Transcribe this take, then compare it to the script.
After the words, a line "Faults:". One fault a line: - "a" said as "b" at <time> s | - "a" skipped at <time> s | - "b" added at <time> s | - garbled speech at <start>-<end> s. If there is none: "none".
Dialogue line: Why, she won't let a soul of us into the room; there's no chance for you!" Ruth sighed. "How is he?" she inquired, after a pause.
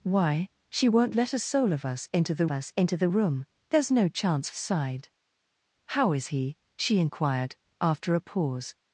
Why, she won't let a soul of us into the us into the room; there's no chance sighed. "How is he?" she inquired, after a pause.
Faults:
- "us into the" added at 2.5 s
- "for you Ruth" skipped at 4.5 s